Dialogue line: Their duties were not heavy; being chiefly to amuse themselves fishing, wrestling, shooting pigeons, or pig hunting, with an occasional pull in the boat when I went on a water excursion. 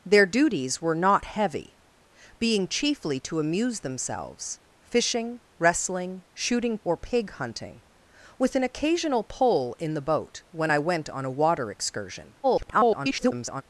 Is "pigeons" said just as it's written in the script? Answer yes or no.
no